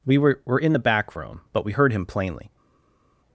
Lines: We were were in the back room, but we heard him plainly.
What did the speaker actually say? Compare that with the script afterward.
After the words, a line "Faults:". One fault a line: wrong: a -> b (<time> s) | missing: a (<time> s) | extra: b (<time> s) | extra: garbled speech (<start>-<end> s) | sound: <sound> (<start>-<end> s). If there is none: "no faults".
We were were in the back room, but we heard him plainly.
Faults:
no faults